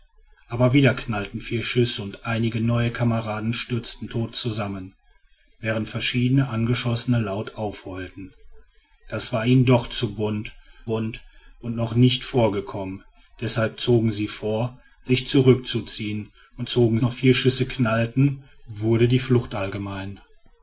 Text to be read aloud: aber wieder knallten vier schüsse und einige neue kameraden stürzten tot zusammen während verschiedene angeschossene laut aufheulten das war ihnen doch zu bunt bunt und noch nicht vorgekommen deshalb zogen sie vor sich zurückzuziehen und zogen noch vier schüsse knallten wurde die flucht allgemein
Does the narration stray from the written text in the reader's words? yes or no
no